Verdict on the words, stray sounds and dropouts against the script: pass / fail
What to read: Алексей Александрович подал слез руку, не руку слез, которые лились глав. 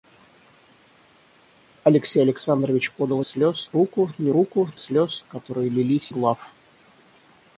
pass